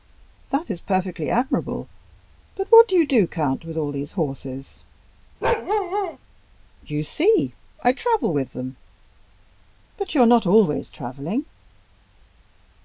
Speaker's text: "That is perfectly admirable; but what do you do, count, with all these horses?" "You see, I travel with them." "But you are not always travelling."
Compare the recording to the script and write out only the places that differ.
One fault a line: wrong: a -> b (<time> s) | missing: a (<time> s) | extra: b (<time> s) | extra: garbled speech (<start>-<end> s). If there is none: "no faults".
no faults